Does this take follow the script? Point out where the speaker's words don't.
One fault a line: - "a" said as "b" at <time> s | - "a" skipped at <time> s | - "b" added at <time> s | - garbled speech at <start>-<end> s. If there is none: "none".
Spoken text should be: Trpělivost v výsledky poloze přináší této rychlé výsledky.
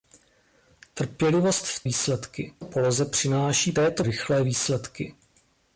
none